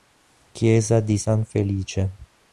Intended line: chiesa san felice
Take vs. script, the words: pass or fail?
fail